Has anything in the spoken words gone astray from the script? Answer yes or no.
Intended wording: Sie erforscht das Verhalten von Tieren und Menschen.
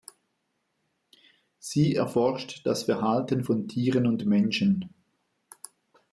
no